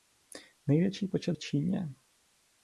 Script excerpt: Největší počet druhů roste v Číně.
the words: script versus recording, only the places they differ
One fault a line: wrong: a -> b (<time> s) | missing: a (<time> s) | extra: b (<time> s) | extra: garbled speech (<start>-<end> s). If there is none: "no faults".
missing: druhů roste (1.3 s)